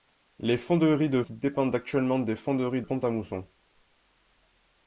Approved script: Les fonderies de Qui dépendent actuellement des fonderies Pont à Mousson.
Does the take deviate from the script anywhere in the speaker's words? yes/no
no